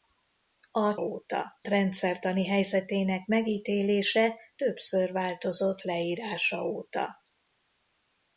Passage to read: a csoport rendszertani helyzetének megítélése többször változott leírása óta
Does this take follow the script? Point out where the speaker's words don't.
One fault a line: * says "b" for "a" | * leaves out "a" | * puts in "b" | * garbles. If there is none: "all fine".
* says "óta" for "csoport"